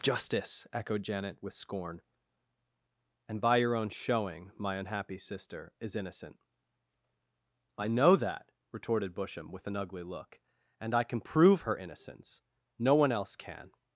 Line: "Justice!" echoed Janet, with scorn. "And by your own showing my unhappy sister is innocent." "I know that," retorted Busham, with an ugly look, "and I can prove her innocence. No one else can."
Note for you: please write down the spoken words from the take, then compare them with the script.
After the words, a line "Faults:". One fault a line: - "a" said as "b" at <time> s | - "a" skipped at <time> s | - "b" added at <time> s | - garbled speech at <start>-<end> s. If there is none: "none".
"Justice!" echoed Janet, with scorn. "And by your own showing my unhappy sister is innocent." "I know that," retorted Busham, with an ugly look, "and I can prove her innocence. No one else can."
Faults:
none